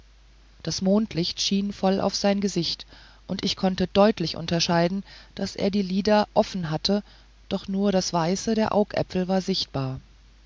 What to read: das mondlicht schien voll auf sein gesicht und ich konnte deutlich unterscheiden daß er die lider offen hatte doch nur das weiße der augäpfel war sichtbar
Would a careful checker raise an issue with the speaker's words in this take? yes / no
no